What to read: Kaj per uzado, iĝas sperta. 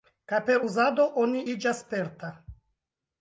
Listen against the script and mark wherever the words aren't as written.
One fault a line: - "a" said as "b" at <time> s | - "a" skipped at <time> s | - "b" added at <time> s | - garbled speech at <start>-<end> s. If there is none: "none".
- "oni" added at 1.2 s